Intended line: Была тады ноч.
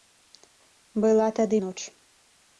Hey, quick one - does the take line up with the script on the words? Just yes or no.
yes